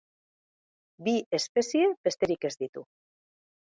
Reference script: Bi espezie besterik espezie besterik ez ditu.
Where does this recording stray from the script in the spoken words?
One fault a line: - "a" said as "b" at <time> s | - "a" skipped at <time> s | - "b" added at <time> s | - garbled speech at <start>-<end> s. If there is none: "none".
- "espezie besterik" skipped at 2.5 s